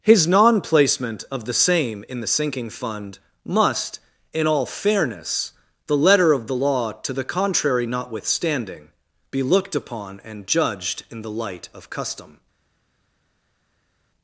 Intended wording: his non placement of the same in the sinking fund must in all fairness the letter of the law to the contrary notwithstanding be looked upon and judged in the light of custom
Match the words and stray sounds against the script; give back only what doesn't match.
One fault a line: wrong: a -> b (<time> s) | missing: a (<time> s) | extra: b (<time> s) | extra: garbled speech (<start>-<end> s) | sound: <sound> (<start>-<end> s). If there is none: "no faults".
no faults